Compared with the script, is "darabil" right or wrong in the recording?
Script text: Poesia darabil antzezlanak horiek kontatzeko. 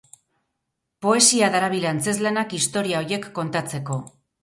right